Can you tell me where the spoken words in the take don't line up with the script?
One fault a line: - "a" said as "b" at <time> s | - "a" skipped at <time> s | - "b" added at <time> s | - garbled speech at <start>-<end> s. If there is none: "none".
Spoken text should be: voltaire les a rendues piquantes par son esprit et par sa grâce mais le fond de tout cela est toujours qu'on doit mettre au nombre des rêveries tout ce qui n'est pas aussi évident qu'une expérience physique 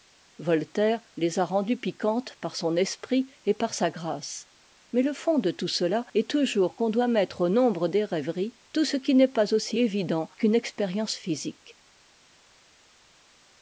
none